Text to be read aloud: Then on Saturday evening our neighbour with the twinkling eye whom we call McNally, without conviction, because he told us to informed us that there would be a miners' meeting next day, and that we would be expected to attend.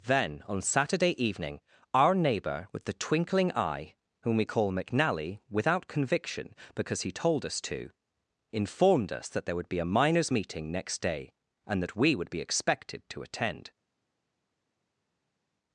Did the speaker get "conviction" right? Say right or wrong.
right